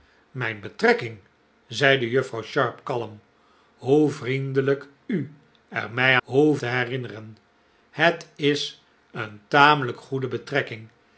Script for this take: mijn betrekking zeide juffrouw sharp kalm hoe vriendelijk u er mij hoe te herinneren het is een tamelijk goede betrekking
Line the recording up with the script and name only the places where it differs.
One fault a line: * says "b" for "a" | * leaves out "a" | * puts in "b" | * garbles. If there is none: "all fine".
all fine